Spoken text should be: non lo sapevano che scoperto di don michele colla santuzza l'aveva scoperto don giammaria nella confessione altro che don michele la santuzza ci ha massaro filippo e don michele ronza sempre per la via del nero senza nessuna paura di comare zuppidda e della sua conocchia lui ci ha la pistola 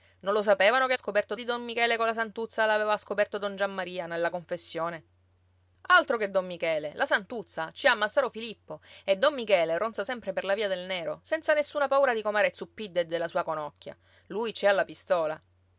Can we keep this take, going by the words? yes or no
yes